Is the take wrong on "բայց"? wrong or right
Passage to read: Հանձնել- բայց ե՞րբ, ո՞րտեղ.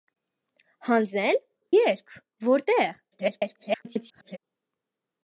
wrong